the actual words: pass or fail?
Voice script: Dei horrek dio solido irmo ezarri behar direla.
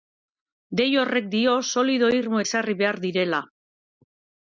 pass